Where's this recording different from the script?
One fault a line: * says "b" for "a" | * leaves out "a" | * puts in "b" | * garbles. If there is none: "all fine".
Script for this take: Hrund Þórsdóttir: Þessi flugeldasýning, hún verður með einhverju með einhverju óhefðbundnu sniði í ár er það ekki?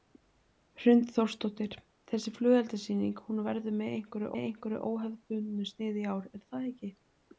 all fine